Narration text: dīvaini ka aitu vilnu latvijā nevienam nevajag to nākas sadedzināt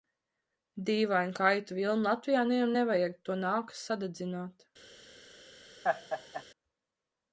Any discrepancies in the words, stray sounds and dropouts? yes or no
yes